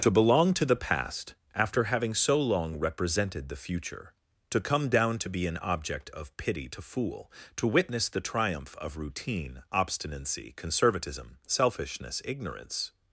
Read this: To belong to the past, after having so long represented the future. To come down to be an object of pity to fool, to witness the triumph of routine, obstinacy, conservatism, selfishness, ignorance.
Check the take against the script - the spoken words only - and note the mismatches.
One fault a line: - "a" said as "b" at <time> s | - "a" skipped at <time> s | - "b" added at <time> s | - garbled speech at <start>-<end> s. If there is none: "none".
none